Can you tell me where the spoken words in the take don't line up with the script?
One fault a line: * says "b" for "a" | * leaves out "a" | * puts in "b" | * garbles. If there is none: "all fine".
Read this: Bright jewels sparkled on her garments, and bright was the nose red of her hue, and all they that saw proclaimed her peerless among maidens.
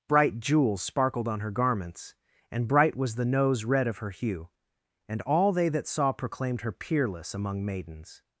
all fine